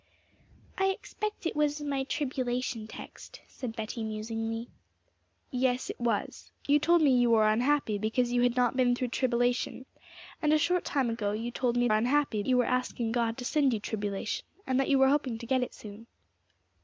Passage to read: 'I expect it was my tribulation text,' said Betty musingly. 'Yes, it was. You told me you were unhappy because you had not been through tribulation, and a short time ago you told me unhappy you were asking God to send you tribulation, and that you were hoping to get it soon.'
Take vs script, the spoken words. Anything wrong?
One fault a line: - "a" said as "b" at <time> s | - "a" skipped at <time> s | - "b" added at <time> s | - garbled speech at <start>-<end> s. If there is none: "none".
none